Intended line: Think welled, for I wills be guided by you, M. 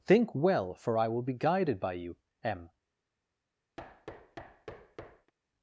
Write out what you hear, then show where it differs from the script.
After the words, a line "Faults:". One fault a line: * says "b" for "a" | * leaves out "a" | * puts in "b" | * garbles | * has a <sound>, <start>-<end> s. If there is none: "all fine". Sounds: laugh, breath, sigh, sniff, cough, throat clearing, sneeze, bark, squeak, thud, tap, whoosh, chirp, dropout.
Think well, for I will be guided by you, M.
Faults:
* says "well" for "welled"
* says "will" for "wills"
* has a thud, 3.8-5.3 s